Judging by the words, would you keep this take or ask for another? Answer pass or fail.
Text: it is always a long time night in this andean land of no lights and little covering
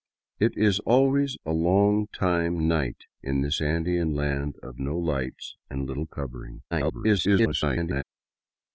fail